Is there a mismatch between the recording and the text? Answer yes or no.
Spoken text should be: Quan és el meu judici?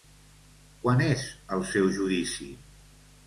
yes